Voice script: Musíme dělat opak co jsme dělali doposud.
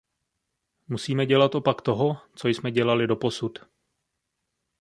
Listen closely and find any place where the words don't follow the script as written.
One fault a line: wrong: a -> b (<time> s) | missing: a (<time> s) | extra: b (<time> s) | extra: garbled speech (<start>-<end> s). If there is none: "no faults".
extra: toho (1.8 s)